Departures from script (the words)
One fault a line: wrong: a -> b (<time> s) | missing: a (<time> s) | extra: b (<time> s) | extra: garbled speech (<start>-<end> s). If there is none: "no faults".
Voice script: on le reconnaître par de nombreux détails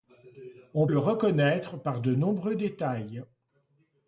no faults